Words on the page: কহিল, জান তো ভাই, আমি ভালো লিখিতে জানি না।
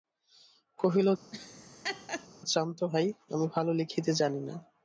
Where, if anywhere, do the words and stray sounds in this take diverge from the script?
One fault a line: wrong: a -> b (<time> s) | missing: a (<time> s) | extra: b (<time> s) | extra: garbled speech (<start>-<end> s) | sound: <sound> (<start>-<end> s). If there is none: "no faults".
sound: laugh (1.3-2.3 s)